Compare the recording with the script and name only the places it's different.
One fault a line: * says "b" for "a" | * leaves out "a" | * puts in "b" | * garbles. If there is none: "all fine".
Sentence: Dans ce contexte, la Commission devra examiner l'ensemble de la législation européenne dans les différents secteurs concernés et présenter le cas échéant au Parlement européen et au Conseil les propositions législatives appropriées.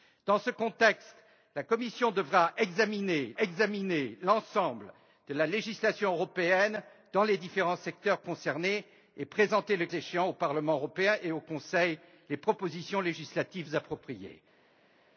* puts in "examiner"
* leaves out "cas"